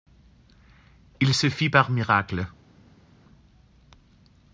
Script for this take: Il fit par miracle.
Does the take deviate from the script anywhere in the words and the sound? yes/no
yes